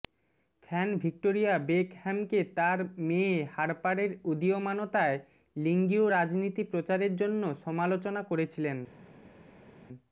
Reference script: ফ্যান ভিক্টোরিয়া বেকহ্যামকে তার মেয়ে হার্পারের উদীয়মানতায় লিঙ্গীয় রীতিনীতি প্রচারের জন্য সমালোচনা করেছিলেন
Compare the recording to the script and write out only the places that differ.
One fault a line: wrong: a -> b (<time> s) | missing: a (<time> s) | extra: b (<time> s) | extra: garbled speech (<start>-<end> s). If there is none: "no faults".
no faults